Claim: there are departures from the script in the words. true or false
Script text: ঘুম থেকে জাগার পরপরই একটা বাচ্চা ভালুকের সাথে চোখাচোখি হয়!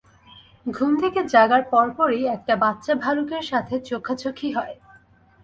false